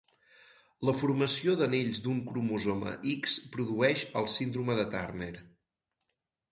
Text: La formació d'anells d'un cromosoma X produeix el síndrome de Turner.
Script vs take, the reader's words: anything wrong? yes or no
no